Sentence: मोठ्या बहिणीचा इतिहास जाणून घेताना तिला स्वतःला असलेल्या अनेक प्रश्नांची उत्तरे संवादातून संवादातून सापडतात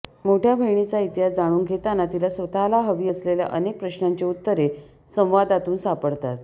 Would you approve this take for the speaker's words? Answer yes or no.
no